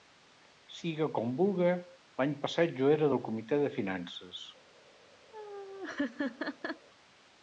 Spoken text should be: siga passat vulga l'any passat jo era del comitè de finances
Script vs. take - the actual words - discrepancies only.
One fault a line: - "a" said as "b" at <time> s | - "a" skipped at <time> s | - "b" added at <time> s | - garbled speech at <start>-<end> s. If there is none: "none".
- "passat" said as "com" at 1.2 s